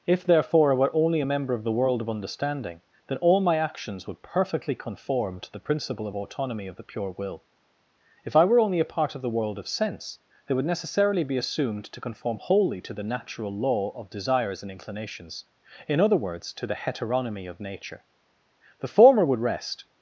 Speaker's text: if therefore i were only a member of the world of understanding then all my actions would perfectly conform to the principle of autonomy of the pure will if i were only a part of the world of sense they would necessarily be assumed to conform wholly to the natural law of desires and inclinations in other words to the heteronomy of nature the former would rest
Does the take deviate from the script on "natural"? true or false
false